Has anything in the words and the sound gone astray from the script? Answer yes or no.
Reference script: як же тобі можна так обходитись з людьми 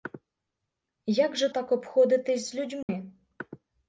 yes